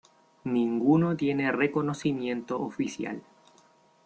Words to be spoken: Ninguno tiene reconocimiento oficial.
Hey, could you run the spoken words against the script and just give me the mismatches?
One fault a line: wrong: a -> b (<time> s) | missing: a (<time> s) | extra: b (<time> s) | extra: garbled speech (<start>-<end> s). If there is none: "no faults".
no faults